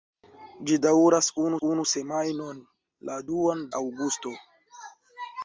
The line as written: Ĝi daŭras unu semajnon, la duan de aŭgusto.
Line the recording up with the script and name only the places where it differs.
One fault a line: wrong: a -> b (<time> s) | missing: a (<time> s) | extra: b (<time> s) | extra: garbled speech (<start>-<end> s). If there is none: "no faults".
extra: unu (1.7 s)
missing: de (3.6 s)